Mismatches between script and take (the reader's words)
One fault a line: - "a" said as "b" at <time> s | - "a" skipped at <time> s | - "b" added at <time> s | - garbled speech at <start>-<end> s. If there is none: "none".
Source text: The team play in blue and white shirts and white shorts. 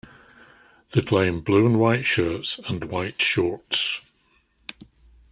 - "team" skipped at 1.0 s